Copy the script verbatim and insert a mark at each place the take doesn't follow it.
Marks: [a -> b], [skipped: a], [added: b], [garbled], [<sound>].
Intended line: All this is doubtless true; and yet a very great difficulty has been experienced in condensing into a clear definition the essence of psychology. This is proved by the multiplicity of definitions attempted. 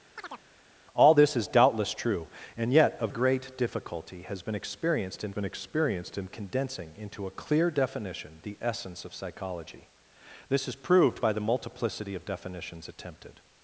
[chirp] All this is doubtless true; and yet a [skipped: very] great difficulty has been experienced in [added: been experienced in] condensing into a clear definition the essence of psychology. This is proved by the multiplicity of definitions attempted.